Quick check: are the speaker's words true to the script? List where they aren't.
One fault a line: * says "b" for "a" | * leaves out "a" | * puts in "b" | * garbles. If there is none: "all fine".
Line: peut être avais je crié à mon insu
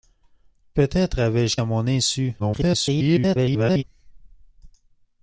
* leaves out "crié"
* garbles